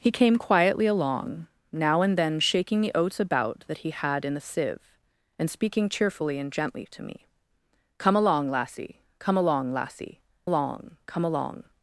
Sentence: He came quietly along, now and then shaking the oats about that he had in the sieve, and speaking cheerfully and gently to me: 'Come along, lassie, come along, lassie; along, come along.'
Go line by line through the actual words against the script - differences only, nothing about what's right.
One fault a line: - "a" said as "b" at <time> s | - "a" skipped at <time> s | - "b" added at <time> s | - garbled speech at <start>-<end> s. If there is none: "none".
none